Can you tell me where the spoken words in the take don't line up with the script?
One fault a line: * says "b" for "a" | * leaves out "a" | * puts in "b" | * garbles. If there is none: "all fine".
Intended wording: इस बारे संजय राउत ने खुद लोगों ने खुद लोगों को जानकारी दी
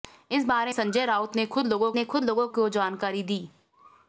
all fine